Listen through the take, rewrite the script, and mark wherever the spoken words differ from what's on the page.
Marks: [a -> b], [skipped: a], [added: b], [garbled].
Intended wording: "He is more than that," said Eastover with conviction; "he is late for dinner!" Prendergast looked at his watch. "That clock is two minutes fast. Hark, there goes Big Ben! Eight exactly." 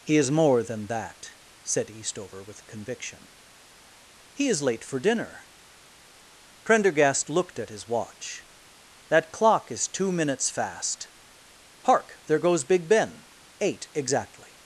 "He is more than that," said Eastover with conviction; "he is late for dinner!" Prendergast looked at his watch. "That clock is two minutes fast. Hark, there goes Big Ben! Eight exactly."